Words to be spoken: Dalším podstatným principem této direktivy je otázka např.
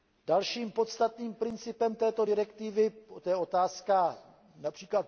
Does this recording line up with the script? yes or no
yes